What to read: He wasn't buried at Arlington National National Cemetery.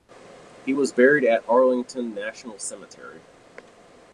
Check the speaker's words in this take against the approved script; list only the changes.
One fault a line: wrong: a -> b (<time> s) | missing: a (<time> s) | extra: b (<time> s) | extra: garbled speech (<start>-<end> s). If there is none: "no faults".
wrong: wasn't -> was (0.7 s)
missing: National (2.6 s)